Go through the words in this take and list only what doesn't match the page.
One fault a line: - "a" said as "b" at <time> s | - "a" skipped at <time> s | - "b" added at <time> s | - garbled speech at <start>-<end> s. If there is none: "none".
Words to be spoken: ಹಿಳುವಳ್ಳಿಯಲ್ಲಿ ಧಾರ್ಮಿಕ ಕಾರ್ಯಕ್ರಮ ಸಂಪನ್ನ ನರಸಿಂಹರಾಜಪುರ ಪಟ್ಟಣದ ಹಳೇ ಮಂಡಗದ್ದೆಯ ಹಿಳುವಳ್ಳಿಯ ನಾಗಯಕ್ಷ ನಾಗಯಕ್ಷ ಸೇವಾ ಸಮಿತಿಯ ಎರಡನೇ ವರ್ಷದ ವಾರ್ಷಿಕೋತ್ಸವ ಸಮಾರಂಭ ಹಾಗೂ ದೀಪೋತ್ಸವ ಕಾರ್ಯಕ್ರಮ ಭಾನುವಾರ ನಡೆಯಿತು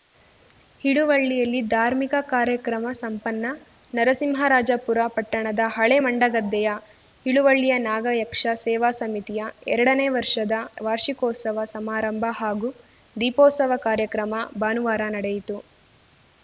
- "ನಾಗಯಕ್ಷ" skipped at 8.5 s